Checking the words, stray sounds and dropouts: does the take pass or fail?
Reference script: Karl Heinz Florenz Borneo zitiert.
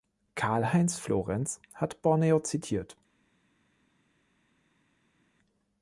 fail